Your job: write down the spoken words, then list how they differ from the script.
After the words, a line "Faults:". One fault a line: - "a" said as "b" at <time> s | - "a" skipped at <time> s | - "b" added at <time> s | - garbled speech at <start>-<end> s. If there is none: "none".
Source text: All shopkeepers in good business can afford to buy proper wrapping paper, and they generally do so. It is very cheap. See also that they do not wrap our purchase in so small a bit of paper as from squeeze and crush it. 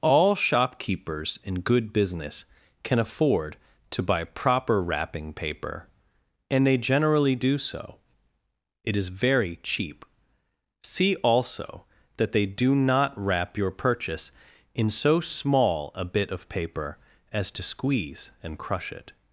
All shopkeepers in good business can afford to buy proper wrapping paper, and they generally do so. It is very cheap. See also that they do not wrap your purchase in so small a bit of paper as to squeeze and crush it.
Faults:
- "our" said as "your" at 13.6 s
- "from" said as "to" at 17.5 s